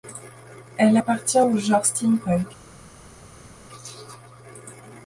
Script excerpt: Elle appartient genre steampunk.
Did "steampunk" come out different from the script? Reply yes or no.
no